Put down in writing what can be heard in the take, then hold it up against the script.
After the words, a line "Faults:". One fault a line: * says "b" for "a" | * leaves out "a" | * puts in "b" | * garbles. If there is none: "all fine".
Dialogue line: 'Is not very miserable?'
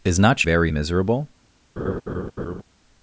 'Is not very miserable?'
Faults:
all fine